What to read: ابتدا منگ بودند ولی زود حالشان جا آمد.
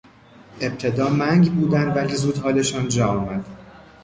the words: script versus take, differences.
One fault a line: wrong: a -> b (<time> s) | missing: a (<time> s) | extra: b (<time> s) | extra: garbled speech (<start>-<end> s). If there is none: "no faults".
no faults